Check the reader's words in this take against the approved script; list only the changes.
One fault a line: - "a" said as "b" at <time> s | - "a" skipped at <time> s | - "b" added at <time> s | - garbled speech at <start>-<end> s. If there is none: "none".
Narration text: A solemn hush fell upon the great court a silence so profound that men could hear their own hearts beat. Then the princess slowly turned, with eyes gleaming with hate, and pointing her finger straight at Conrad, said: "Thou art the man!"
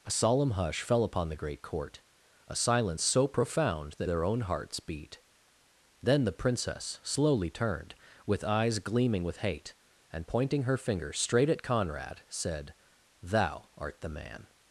- "men could hear" skipped at 4.1 s